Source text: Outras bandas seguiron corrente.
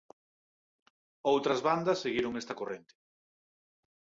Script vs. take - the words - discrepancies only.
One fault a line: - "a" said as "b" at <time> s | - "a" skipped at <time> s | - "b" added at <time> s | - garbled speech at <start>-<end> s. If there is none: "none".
- "esta" added at 2.4 s